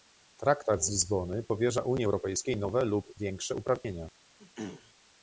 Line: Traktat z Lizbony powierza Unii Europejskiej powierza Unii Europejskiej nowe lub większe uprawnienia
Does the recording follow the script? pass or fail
fail